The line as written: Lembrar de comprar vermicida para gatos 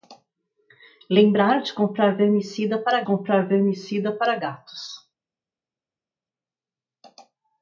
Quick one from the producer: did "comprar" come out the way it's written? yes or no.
yes